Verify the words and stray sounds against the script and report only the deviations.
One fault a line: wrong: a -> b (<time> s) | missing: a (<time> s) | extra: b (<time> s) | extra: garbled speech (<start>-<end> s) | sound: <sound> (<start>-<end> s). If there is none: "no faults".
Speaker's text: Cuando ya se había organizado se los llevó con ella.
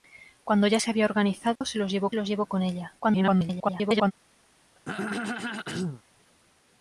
sound: dropout (1.6-1.6 s)
extra: los llevó (2.1 s)
extra: garbled speech (3.0-4.1 s)
sound: throat clearing (4.8-6.0 s)